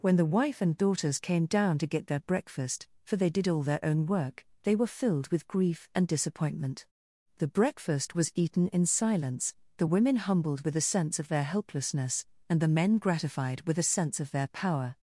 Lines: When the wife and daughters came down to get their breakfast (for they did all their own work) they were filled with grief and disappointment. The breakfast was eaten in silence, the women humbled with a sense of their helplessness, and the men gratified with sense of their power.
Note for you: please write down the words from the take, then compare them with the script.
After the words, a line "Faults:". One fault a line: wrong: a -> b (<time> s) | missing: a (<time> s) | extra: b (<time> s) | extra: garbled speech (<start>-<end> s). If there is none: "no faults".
When the wife and daughters came down to get their breakfast (for they did all their own work) they were filled with grief and disappointment. The breakfast was eaten in silence, the women humbled with a sense of their helplessness, and the men gratified with a sense of their power.
Faults:
extra: a (13.8 s)